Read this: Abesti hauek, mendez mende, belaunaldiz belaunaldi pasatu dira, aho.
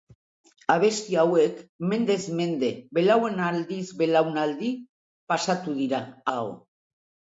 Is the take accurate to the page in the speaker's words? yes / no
yes